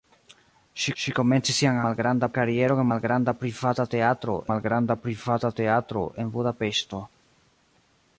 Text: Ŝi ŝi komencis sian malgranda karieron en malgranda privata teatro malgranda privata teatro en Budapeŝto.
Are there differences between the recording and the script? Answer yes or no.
no